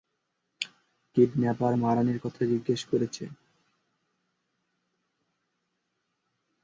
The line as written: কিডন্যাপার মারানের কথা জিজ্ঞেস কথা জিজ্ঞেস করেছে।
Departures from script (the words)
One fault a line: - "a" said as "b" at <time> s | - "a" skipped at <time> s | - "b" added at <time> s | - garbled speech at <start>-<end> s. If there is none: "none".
- "কথা জিজ্ঞেস" skipped at 2.8 s